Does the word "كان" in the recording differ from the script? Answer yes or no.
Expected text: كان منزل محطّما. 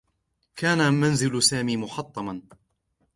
no